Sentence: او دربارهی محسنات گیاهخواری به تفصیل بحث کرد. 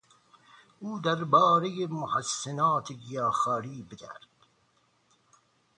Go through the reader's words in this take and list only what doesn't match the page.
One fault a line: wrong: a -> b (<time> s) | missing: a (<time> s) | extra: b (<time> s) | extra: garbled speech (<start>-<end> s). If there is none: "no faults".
missing: تفصیل بحث (4.0 s)